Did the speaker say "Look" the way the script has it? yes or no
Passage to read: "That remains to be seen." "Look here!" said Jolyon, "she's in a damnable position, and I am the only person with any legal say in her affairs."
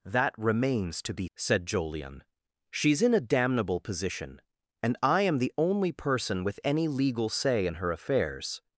no